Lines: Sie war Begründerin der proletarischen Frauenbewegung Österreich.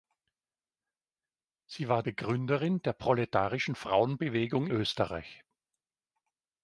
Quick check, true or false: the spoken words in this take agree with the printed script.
true